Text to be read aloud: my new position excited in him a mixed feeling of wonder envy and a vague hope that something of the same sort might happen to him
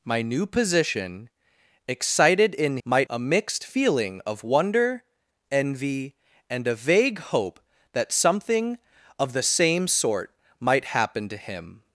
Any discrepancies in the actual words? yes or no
yes